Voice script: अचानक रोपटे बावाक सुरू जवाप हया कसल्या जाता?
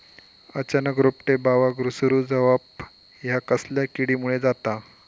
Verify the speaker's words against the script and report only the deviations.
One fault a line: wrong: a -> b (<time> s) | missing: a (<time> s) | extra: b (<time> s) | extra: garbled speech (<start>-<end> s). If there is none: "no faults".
extra: किडीमुळे (4.0 s)